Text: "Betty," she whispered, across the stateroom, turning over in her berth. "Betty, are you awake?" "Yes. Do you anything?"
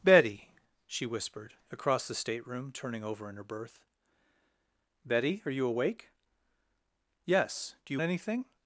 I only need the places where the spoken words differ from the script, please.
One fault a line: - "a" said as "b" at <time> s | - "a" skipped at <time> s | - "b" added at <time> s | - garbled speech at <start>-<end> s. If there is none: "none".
none